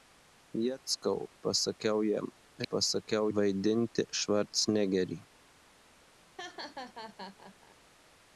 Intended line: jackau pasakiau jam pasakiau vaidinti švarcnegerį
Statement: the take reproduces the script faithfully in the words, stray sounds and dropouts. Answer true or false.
false